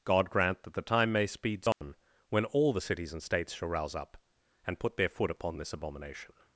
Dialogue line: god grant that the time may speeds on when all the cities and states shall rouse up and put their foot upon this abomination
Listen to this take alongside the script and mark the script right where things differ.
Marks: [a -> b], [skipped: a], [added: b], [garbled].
god grant that the time may speeds on when all the cities and states shall rouse up and put their foot upon this abomination